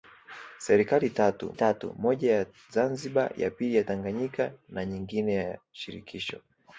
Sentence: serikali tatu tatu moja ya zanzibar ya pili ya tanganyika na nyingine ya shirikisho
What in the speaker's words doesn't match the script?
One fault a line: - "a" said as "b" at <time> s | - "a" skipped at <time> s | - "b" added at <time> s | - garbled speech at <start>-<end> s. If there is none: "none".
none